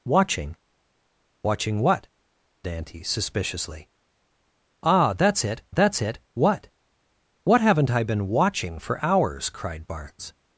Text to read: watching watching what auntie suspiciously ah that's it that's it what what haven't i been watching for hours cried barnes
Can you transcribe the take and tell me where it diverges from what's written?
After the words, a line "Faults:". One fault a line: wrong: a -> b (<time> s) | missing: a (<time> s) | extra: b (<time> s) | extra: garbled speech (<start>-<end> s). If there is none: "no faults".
watching watching what auntie suspiciously ah that's it that's it what what haven't i been watching for hours cried barnes
Faults:
no faults